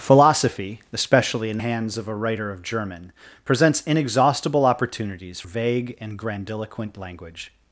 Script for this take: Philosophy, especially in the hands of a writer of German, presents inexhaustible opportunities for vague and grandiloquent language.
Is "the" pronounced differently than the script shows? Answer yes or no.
yes